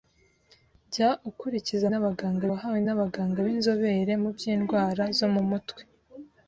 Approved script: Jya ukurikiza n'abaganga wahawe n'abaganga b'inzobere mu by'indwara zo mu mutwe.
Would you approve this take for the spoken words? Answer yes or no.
yes